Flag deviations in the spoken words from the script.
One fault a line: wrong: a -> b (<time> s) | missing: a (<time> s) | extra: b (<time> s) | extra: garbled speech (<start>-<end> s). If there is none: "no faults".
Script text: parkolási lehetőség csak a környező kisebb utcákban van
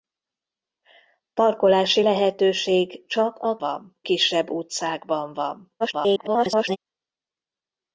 wrong: környező -> van (3.6 s)
extra: garbled speech (5.8-6.8 s)